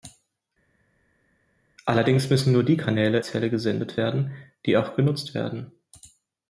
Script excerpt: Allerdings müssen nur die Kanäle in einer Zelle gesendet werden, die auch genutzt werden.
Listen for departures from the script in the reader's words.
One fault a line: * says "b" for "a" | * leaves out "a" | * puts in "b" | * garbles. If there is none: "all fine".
* leaves out "in einer"